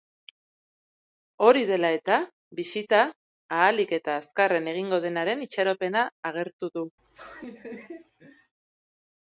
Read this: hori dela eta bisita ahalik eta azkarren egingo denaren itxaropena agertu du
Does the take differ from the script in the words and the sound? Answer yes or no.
yes